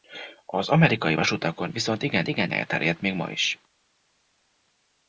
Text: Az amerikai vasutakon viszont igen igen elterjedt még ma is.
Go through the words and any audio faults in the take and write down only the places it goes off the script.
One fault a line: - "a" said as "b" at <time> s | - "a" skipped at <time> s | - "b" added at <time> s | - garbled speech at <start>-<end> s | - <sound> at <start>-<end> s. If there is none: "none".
none